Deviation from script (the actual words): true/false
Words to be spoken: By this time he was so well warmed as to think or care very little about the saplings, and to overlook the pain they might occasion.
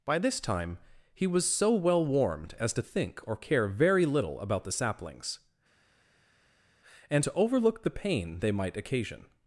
false